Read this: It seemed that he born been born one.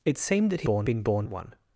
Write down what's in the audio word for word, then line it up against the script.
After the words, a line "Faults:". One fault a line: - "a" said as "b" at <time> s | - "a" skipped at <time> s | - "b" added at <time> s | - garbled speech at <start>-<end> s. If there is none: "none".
It seemed that he born been born one.
Faults:
none